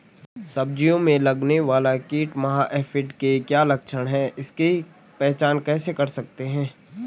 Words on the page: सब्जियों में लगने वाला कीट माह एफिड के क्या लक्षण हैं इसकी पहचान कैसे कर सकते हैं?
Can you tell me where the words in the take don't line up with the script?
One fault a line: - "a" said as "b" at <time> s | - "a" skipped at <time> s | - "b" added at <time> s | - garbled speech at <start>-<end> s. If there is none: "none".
none